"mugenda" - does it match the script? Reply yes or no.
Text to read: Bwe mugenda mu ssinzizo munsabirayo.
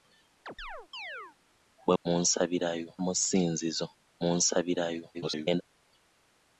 no